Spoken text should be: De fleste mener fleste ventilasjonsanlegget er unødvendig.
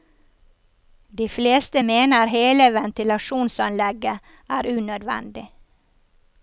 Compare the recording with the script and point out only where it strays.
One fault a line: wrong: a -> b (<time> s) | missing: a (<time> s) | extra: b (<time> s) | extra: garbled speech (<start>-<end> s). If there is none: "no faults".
wrong: fleste -> hele (2.2 s)